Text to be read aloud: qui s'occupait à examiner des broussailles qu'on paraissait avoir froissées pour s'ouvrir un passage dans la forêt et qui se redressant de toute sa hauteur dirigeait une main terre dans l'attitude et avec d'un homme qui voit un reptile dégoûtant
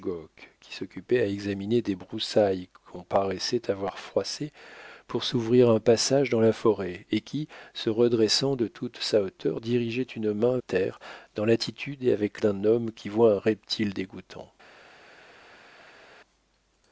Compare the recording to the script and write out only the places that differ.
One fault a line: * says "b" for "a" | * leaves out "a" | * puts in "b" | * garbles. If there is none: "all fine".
all fine